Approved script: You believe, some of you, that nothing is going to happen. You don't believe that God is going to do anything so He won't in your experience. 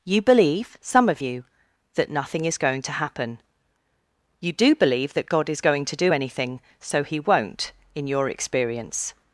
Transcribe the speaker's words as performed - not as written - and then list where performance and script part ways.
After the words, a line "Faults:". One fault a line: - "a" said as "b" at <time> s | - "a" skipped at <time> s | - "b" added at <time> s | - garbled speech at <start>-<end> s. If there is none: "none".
You believe, some of you, that nothing is going to happen. You do believe that God is going to do anything so He won't in your experience.
Faults:
- "don't" said as "do" at 4.5 s